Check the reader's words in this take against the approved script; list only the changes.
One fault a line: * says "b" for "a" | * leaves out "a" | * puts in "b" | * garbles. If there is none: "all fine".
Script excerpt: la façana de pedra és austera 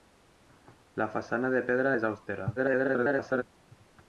* garbles